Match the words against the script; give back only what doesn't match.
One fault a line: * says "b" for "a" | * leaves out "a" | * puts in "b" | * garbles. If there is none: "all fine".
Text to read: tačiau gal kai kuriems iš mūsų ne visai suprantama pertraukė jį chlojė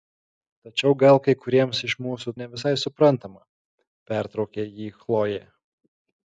all fine